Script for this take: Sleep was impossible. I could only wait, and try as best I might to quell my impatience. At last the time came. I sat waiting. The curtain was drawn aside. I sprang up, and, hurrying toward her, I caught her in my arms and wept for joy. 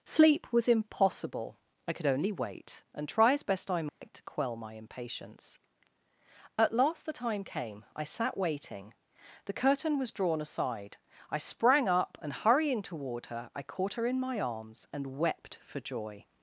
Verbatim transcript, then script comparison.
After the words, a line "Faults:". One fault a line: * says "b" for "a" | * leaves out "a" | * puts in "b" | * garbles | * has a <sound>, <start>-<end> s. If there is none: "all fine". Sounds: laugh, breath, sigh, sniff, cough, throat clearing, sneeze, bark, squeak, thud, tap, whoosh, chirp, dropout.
Sleep was impossible. I could only wait, and try as best I might to quell my impatience. At last the time came. I sat waiting. The curtain was drawn aside. I sprang up, and, hurrying toward her, I caught her in my arms and wept for joy.
Faults:
* has a dropout, 3.9-4.0 s